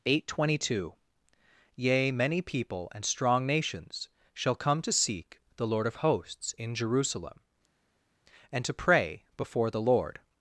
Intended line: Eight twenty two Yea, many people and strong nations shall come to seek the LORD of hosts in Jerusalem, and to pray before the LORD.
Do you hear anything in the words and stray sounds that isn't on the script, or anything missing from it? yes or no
no